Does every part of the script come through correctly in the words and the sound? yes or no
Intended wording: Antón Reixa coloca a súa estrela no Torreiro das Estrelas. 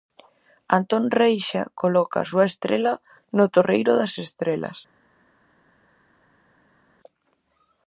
yes